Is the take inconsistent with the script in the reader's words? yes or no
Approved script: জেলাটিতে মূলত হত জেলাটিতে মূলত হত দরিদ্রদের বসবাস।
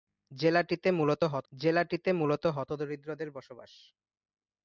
no